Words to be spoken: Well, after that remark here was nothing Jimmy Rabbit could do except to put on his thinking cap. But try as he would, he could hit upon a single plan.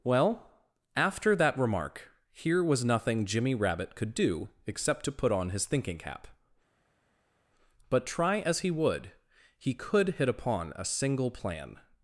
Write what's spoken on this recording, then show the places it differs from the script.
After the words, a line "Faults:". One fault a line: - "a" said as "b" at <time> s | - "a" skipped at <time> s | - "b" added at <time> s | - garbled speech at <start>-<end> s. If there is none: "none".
Well, after that remark here was nothing Jimmy Rabbit could do except to put on his thinking cap. But try as he would, he could hit upon a single plan.
Faults:
none